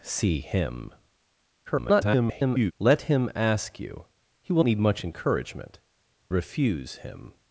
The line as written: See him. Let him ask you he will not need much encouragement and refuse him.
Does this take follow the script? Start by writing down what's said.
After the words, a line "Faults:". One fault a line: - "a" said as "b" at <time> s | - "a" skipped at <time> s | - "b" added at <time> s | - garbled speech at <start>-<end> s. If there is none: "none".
See him. [garbled] Let him ask you he will need much encouragement refuse him.
Faults:
- garbled speech at 1.7-2.7 s
- "not" skipped at 4.6 s
- "and" skipped at 5.8 s